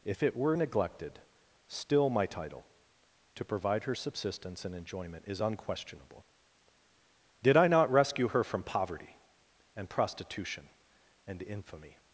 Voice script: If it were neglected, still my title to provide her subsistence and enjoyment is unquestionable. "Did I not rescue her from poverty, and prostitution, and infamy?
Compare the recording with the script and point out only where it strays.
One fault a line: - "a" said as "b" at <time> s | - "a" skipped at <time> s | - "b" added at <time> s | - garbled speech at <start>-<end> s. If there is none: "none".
none